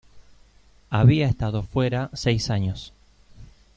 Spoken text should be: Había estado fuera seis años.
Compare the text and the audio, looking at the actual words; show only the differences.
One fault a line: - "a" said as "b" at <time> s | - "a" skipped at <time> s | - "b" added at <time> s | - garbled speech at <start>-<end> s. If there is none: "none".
none